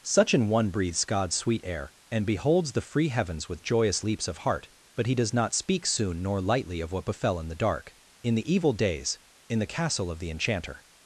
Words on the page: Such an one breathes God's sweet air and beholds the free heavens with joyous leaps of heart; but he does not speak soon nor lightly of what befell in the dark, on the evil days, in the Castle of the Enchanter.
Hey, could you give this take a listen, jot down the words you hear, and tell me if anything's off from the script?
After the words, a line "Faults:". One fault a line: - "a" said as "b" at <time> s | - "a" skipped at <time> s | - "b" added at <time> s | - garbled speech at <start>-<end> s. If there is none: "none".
Such an one breathes God's sweet air and beholds the free heavens with joyous leaps of heart; but he does not speak soon nor lightly of what befell in the dark, in the evil days, in the Castle of the Enchanter.
Faults:
- "on" said as "in" at 8.2 s